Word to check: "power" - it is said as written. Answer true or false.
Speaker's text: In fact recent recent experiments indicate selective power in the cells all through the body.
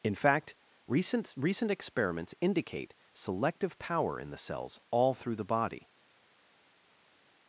true